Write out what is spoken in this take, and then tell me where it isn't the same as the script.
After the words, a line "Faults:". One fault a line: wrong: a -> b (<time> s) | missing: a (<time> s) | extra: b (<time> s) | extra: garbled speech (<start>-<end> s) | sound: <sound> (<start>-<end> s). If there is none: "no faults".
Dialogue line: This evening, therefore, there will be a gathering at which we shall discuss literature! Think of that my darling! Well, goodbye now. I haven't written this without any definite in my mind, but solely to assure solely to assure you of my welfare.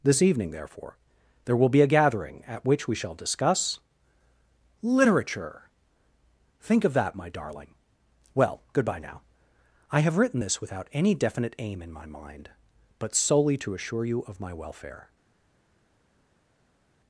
This evening, therefore, there will be a gathering at which we shall discuss literature! Think of that my darling! Well, goodbye now. I have written this without any definite aim in my mind, but solely to assure you of my welfare.
Faults:
wrong: haven't -> have (10.0 s)
extra: aim (11.6 s)
missing: solely to assure (14.0 s)